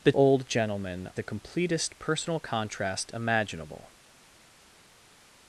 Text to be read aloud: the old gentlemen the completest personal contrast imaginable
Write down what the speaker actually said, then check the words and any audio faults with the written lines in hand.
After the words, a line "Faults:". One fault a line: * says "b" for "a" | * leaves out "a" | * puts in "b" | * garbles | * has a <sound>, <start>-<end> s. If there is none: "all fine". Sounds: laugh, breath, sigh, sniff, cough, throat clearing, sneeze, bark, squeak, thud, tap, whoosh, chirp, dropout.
the old gentlemen the completest personal contrast imaginable
Faults:
all fine